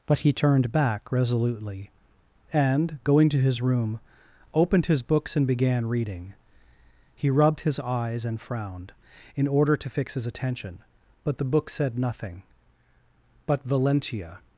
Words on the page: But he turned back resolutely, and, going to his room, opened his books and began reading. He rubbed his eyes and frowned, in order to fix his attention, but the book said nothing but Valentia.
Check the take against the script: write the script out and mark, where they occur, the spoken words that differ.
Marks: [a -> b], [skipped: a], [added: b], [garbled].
But he turned back resolutely, and, going to his room, opened his books and began reading. He rubbed his eyes and frowned, in order to fix his attention, but the book said nothing but Valentia.